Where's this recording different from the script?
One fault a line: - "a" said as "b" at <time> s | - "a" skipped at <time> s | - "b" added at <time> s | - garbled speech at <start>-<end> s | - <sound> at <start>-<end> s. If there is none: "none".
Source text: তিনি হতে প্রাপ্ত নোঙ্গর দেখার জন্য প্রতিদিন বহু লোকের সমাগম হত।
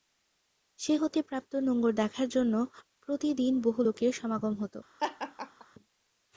- "তিনি" said as "সে" at 0.8 s
- laugh at 5.0-5.7 s